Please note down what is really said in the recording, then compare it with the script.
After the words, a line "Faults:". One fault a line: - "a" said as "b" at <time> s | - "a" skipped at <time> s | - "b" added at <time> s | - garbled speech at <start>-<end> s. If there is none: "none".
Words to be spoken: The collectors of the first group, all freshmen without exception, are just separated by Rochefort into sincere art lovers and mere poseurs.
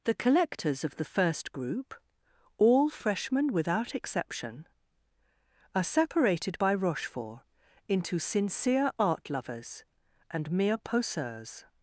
The collectors of the first group, all freshmen without exception, are separated by Rochefort into sincere art lovers and mere poseurs.
Faults:
- "just" skipped at 5.8 s